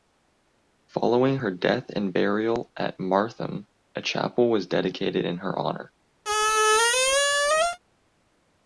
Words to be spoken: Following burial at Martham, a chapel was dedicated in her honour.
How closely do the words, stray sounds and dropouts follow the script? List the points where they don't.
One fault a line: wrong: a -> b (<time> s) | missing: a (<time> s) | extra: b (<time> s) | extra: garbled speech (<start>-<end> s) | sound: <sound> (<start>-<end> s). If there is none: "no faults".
extra: her death and (1.3 s)
sound: squeak (6.2-7.8 s)